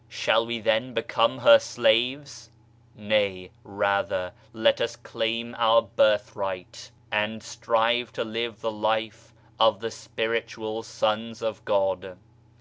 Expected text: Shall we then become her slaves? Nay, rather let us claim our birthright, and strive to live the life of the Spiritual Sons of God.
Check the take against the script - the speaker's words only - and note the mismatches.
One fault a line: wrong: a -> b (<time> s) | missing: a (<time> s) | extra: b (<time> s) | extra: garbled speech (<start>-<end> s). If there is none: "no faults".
no faults